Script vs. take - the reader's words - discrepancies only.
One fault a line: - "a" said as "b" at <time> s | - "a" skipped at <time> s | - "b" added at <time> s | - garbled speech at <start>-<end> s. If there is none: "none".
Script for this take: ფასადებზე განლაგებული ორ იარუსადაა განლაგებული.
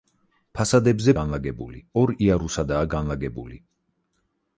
none